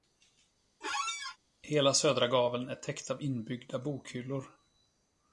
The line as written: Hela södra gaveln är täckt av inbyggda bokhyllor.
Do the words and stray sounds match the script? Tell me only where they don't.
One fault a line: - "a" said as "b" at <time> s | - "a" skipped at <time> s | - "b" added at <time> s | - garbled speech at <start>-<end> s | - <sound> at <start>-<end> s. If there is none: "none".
- squeak at 0.8-1.4 s